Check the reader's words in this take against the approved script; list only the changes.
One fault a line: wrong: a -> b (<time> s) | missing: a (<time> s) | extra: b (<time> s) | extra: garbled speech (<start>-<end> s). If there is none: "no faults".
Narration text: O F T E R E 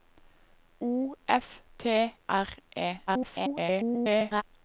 missing: E (2.1 s)
extra: garbled speech (3.1-4.4 s)